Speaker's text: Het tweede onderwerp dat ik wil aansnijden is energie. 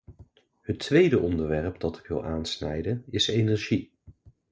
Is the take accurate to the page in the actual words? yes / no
yes